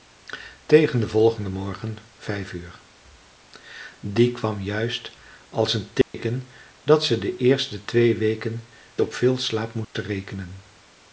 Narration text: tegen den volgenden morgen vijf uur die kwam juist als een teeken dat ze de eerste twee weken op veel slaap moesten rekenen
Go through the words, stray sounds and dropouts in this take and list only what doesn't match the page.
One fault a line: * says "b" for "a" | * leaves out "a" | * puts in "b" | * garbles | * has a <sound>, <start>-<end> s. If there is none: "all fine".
* has a dropout, 6.0-6.1 s
* has a dropout, 9.8-9.9 s